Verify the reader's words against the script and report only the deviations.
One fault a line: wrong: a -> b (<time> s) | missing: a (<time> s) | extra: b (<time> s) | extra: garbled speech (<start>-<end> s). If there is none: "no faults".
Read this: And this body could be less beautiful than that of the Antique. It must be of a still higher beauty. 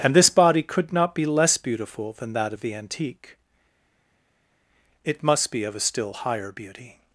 extra: not (0.9 s)